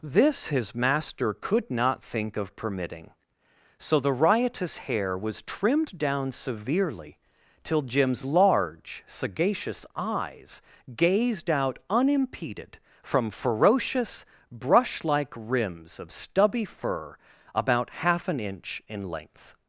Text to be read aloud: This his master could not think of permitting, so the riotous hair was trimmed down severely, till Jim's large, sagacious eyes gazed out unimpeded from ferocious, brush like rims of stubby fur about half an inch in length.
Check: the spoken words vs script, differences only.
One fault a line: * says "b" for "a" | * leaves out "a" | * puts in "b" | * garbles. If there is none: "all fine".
all fine